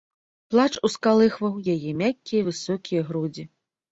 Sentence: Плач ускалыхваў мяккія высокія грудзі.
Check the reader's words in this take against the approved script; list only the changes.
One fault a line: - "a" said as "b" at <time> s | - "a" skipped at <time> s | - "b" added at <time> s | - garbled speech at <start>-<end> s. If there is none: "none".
- "яе" added at 1.7 s